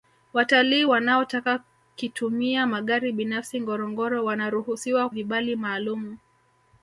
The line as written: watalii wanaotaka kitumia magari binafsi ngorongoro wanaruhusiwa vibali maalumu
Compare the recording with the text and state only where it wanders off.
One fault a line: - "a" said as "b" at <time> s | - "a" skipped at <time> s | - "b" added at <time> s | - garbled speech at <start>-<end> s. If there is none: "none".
none